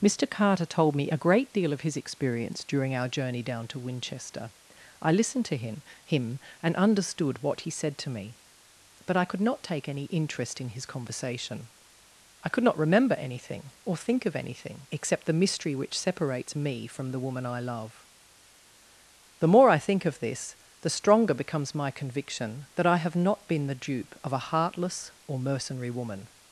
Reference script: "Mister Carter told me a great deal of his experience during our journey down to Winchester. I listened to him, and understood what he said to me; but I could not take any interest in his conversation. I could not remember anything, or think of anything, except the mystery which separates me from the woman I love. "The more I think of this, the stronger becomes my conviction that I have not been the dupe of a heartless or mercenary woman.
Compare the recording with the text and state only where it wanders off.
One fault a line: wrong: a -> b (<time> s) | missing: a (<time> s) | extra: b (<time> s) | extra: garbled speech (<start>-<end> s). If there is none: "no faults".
extra: him (6.0 s)